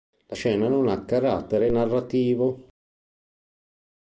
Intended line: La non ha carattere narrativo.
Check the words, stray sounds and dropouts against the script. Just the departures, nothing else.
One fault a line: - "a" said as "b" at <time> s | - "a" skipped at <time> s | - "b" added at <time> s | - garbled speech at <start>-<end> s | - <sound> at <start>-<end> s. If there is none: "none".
- "scena" added at 0.3 s